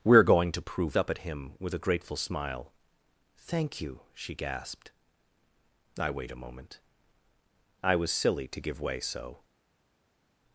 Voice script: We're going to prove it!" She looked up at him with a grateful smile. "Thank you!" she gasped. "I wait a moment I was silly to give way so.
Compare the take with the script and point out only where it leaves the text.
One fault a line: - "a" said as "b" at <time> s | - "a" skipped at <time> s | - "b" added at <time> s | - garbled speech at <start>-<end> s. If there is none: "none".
- "it She looked" skipped at 1.0 s